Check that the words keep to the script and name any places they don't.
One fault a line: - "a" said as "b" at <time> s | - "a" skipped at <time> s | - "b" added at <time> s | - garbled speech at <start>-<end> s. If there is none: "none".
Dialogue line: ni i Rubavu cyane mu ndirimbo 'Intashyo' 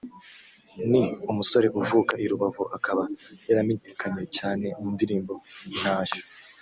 - "umusore uvuka" added at 1.3 s
- "akaba yaramenyekanye" added at 2.8 s